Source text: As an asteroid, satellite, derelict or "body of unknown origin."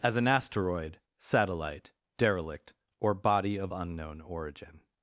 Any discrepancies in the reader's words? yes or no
no